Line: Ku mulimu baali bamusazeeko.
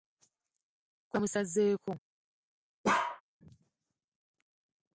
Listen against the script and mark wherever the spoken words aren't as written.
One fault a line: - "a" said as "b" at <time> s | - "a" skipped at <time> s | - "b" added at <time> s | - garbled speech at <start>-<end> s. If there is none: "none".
- "mulimu baali" skipped at 1.2 s